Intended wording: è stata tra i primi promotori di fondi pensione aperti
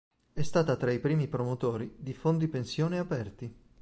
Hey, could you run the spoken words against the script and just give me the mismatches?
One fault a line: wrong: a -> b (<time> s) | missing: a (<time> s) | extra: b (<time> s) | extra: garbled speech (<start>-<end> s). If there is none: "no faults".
no faults